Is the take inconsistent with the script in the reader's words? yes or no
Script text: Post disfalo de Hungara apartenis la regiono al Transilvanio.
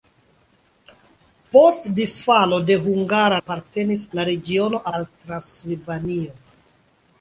no